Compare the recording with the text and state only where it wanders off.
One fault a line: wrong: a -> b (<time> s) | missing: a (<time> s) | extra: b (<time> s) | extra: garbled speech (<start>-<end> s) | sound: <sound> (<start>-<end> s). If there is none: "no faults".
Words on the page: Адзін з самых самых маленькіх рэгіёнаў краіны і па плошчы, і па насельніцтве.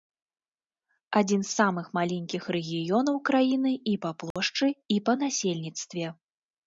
missing: самых (1.9 s)
sound: dropout (4.3-4.4 s)